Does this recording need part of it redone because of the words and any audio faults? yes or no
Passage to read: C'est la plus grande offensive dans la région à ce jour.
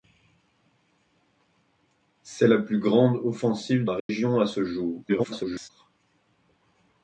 yes